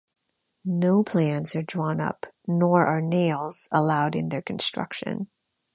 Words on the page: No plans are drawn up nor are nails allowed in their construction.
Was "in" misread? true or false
false